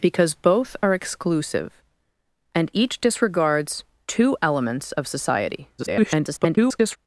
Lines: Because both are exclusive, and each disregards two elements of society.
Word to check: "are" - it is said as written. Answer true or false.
true